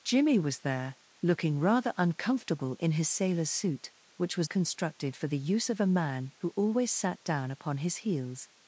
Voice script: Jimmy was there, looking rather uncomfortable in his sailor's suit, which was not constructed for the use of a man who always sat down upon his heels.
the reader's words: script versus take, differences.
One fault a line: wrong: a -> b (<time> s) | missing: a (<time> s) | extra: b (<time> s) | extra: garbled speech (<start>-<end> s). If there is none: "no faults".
missing: not (4.5 s)